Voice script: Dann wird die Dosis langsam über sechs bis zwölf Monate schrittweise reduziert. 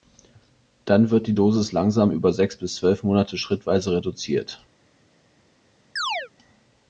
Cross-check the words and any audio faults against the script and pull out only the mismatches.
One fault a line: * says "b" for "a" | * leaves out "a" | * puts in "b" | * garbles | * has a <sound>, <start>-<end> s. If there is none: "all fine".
* has a chirp, 6.0-6.3 s